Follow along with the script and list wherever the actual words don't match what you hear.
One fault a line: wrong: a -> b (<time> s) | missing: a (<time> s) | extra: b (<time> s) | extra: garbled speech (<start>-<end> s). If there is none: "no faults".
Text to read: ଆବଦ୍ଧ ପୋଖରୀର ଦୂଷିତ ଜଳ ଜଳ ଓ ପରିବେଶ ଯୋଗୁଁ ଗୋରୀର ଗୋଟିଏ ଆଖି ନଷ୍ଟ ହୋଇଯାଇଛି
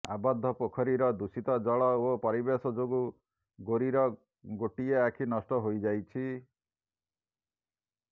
missing: ଜଳ (1.9 s)